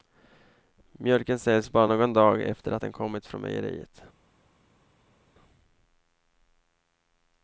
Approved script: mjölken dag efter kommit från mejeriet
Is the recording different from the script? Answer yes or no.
yes